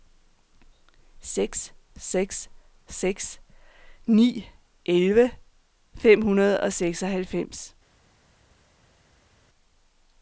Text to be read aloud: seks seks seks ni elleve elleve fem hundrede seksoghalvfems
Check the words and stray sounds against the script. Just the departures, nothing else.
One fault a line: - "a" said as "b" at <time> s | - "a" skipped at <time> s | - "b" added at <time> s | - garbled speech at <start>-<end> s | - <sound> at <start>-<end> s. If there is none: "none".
- "elleve" skipped at 5.3 s
- "og" added at 6.6 s